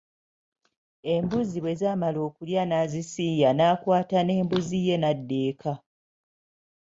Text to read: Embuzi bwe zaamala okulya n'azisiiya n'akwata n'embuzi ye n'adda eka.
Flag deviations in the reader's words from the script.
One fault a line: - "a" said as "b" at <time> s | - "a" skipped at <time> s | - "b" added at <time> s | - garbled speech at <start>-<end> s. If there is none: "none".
none